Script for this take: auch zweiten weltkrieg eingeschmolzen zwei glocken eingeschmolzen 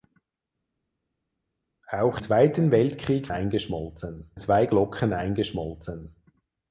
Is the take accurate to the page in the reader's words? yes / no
yes